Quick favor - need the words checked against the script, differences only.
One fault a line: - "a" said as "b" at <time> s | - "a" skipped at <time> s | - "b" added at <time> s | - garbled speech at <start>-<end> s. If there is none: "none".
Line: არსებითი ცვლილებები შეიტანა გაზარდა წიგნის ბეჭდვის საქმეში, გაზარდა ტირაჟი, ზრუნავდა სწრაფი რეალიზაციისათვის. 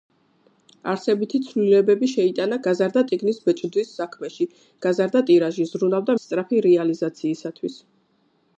none